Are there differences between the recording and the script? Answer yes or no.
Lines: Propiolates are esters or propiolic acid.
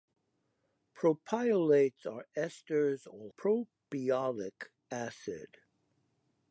no